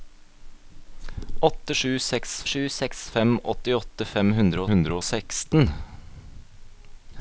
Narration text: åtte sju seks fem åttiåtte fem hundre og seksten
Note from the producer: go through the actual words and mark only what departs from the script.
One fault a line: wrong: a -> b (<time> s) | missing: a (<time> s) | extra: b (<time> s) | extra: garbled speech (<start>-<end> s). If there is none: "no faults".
extra: sju seks (2.5 s)
extra: hundre (4.7 s)